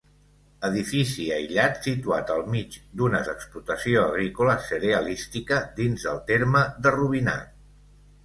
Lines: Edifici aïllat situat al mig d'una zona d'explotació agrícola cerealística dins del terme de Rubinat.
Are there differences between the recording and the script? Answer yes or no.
yes